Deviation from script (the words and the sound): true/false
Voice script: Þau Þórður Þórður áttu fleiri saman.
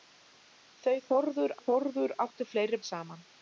false